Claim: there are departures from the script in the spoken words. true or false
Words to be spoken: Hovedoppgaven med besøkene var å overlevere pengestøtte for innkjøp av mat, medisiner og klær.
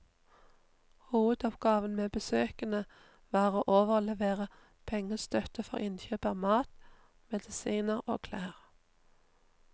false